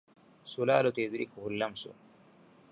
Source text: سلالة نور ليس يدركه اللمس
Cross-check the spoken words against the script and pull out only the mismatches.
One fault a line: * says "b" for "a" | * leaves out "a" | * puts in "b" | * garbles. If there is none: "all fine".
* leaves out "نور ليس"